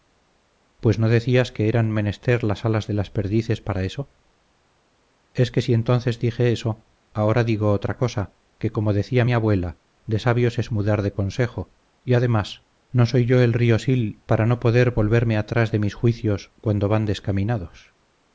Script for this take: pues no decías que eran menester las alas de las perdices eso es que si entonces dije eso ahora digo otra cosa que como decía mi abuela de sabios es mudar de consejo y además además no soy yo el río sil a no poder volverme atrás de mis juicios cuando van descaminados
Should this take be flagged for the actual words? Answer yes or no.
yes